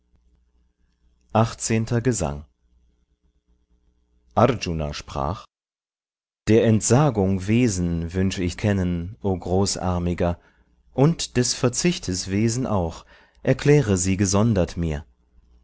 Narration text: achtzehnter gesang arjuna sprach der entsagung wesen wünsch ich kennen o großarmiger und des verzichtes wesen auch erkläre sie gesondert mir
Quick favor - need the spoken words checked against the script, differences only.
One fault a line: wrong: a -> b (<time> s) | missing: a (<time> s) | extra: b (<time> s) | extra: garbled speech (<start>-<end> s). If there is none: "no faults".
no faults